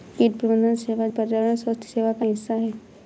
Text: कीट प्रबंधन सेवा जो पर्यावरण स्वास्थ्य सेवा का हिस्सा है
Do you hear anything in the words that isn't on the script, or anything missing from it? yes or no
yes